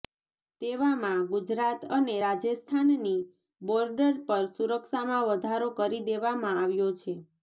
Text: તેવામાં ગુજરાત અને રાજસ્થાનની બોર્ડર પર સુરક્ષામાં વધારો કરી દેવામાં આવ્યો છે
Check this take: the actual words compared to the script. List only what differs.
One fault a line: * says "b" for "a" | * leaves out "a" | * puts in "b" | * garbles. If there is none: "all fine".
all fine